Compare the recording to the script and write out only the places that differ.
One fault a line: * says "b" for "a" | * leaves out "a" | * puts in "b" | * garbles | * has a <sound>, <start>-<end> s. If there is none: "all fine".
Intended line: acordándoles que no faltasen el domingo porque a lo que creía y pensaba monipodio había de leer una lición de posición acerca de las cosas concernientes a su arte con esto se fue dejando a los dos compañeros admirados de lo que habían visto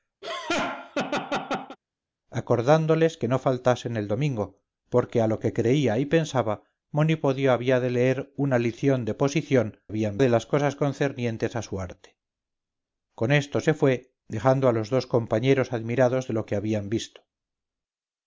* has a laugh, 0.2-1.8 s
* says "habían" for "acerca"